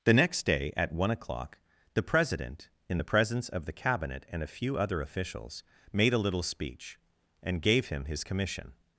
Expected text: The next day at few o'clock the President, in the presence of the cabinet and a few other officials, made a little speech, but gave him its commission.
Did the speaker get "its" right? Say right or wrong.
wrong